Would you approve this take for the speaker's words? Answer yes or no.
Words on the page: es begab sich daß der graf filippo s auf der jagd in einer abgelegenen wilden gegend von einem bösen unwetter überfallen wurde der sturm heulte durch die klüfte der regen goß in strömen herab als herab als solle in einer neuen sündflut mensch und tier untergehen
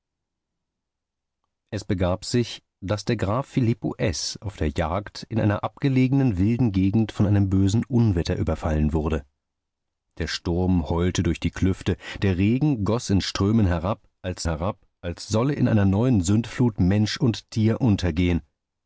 yes